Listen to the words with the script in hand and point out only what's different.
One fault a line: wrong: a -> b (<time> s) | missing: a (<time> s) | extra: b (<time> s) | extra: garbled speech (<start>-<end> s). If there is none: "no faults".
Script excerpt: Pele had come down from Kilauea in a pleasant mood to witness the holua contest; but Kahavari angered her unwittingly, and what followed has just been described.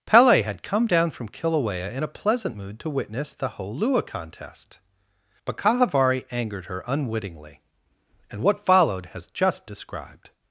missing: been (9.7 s)